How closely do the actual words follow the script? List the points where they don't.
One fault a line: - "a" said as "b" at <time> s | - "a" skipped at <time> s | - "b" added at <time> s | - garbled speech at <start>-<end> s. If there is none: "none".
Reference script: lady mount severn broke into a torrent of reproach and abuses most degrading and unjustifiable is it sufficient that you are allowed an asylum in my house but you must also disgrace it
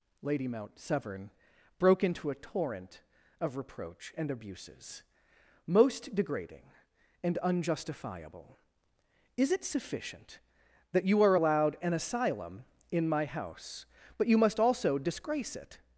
none